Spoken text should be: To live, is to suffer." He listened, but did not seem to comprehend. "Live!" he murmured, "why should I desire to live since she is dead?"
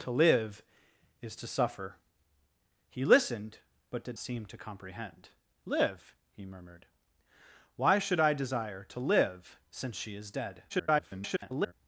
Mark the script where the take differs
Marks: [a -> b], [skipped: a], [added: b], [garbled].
To live, is to suffer." He listened, but did [skipped: not] seem to comprehend. "Live!" he murmured, "why should I desire to live since she is dead?" [garbled]